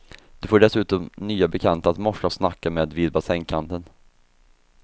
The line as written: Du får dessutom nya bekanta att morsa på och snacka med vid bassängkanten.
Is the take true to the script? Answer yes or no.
no